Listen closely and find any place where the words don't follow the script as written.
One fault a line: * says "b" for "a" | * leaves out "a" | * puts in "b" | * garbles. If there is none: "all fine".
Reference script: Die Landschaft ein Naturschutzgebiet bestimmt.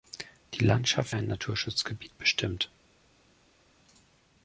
all fine